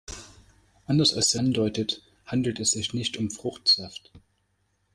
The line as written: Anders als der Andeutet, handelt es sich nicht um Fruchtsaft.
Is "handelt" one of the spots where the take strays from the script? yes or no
no